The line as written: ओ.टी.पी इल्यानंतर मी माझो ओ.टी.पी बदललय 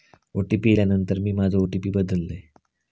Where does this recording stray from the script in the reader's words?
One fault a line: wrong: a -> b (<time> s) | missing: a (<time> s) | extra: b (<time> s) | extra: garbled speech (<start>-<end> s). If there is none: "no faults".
no faults